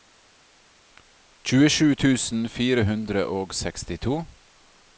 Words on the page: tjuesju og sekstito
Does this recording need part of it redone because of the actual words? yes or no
yes